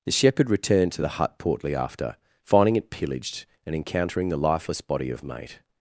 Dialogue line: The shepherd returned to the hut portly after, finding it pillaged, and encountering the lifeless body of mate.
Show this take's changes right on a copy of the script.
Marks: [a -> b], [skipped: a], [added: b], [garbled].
The shepherd returned to the hut portly after, finding it pillaged, and encountering the lifeless body of mate.